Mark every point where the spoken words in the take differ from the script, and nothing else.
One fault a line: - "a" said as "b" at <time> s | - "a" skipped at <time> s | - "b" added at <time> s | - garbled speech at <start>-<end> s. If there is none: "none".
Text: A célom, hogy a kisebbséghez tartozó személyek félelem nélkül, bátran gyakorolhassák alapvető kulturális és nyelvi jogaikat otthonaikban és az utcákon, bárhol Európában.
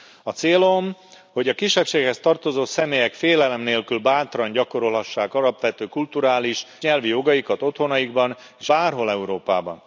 - "és" skipped at 6.7 s
- "az utcákon" skipped at 8.7 s